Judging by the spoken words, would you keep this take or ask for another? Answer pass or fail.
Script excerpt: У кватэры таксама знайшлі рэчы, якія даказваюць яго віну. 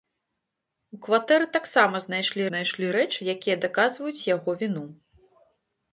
fail